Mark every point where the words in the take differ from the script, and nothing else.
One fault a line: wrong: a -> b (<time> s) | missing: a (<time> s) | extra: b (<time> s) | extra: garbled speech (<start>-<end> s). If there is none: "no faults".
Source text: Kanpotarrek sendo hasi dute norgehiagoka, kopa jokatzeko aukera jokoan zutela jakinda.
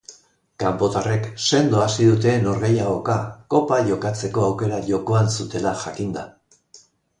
no faults